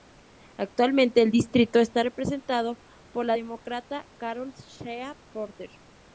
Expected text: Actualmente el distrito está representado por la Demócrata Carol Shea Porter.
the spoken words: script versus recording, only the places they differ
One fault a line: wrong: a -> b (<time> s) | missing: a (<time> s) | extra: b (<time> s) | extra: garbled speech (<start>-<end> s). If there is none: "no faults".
no faults